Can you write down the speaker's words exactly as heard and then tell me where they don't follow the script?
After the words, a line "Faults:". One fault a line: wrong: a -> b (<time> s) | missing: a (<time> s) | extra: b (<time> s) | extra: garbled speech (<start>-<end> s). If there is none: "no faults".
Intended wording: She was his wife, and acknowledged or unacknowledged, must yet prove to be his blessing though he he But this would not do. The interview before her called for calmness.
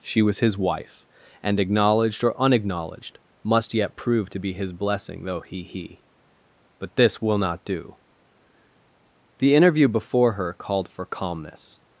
She was his wife, and acknowledged or unacknowledged, must yet prove to be his blessing though he he But this will not do. The interview before her called for calmness.
Faults:
wrong: would -> will (7.2 s)